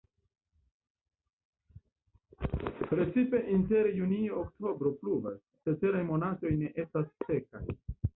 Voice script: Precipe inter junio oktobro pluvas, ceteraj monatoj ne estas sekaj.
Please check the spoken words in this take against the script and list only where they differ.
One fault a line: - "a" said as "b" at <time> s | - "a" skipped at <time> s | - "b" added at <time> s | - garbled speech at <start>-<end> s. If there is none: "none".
none